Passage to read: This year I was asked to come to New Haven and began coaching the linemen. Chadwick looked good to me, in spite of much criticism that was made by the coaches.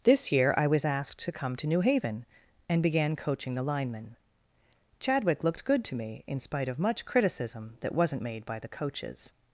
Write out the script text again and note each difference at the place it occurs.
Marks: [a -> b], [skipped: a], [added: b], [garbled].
This year I was asked to come to New Haven and began coaching the linemen. Chadwick looked good to me, in spite of much criticism that [was -> wasn't] made by the coaches.